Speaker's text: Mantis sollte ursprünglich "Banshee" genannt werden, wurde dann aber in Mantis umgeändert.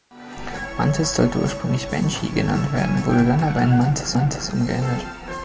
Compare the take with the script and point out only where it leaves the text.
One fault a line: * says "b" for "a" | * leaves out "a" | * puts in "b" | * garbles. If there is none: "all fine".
* puts in "Mantis"